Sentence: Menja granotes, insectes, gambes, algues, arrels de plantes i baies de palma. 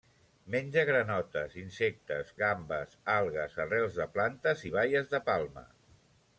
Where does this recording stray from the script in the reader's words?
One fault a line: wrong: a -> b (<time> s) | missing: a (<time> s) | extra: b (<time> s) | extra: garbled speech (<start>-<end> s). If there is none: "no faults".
no faults